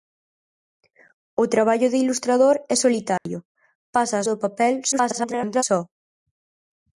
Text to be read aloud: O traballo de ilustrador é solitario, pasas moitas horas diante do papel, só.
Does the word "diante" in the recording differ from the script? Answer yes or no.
yes